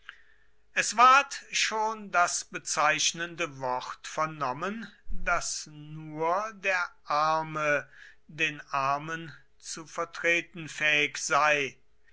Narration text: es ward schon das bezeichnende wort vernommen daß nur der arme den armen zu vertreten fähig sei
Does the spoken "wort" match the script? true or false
true